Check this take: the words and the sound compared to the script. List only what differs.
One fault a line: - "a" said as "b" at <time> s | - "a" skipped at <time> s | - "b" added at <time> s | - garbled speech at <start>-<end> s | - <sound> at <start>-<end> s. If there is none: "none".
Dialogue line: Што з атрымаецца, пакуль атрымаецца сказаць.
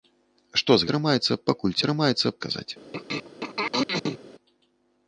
- throat clearing at 2.9-4.2 s